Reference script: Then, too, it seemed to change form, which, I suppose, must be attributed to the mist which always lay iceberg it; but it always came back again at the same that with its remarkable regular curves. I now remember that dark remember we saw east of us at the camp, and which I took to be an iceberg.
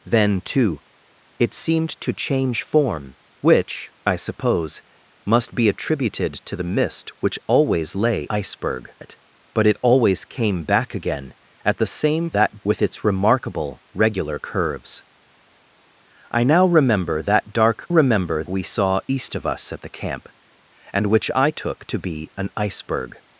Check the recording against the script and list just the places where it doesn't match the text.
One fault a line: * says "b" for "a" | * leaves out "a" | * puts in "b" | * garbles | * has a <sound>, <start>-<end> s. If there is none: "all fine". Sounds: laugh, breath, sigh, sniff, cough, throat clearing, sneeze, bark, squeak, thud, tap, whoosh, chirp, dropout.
all fine